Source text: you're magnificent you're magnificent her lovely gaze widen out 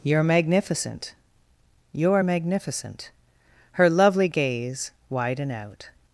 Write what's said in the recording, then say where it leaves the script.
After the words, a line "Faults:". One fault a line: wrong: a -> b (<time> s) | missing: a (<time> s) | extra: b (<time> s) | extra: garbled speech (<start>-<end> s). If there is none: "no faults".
you're magnificent you're magnificent her lovely gaze widen out
Faults:
no faults